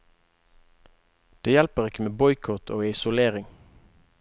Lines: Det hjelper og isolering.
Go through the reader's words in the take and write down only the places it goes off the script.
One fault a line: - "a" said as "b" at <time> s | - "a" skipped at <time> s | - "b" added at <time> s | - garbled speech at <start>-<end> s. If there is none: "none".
- "ikke med boikott" added at 1.9 s